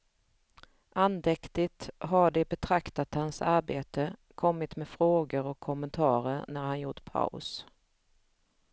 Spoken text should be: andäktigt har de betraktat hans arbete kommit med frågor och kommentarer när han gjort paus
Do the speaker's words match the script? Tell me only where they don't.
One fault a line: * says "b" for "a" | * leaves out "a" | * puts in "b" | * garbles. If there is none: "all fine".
all fine